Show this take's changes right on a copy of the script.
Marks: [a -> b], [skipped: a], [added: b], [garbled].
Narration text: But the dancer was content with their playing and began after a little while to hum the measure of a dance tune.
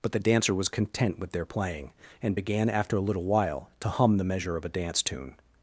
But the dancer was content with their playing and began after a little while to hum the measure of a dance tune.